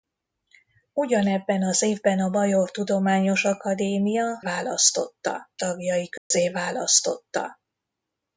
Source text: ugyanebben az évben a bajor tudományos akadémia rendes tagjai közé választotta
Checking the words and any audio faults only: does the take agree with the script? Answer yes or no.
no